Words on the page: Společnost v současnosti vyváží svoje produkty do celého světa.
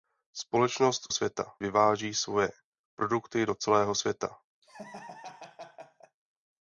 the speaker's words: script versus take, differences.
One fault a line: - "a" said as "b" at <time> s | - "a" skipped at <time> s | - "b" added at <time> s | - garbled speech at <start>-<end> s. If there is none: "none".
- "současnosti" said as "světa" at 1.1 s